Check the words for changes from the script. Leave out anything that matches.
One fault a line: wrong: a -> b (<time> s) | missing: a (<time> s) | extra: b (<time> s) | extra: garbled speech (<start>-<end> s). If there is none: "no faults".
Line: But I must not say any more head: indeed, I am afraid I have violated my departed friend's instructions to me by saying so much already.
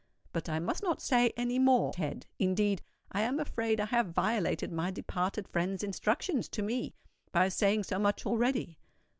no faults